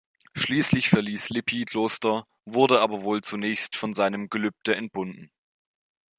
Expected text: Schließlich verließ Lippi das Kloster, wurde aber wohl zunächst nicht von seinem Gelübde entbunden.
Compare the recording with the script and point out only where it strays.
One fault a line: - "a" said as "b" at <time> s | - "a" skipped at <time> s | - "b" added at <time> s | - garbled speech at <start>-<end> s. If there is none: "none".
- "das" skipped at 1.7 s
- "nicht" skipped at 3.7 s